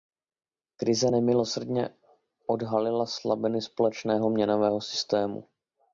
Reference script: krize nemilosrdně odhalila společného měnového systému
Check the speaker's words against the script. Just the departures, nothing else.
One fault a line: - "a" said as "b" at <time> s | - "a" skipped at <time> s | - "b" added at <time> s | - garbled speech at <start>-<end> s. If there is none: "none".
- "slabiny" added at 3.1 s